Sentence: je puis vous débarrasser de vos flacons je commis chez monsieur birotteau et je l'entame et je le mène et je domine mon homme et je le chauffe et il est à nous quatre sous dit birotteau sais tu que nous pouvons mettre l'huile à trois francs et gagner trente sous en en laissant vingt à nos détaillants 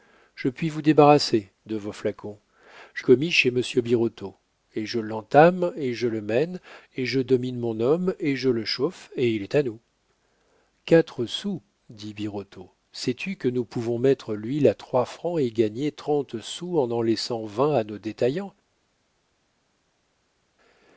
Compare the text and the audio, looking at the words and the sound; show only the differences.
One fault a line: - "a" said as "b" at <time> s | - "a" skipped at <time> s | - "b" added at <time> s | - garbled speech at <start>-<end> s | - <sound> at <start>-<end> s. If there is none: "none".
none